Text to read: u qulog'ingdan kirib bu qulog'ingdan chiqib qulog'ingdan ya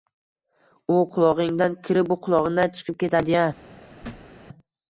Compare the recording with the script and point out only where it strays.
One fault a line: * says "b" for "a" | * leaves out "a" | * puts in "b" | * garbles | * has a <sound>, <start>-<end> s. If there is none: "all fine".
* says "ketadi" for "qulog'ingdan"
* has a thud, 4.0-4.3 s